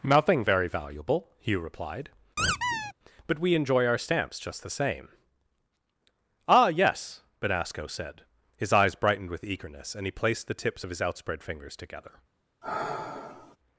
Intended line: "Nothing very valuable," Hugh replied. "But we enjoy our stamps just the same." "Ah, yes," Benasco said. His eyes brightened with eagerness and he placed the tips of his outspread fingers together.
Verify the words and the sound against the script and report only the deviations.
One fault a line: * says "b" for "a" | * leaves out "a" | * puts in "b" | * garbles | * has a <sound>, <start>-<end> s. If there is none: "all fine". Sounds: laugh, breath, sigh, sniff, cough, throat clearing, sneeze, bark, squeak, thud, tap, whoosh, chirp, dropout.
* has a squeak, 2.4-2.9 s
* has a sigh, 12.6-13.6 s